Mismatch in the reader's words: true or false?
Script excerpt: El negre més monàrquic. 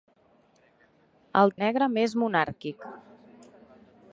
false